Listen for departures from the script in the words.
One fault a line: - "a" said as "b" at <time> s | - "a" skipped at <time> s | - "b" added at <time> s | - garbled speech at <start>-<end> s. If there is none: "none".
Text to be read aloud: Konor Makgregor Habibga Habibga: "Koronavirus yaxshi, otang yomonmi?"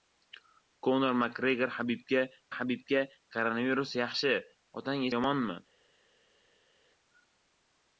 none